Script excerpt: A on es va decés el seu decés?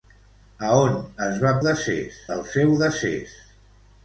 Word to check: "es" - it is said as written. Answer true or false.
true